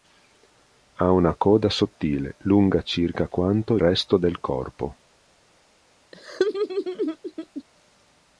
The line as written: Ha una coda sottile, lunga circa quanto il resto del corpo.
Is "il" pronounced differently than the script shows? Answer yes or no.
yes